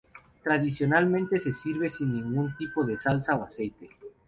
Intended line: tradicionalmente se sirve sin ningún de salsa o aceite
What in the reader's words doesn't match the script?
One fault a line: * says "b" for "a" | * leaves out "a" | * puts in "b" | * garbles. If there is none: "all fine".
* puts in "tipo"